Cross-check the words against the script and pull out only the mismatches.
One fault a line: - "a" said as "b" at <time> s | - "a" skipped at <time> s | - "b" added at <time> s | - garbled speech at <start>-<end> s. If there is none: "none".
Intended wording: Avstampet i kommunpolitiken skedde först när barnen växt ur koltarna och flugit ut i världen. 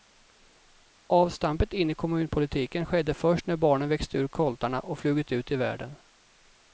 - "in" added at 1.7 s